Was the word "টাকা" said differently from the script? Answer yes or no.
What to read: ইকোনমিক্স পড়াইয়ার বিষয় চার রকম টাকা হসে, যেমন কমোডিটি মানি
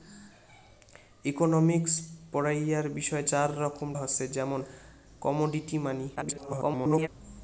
yes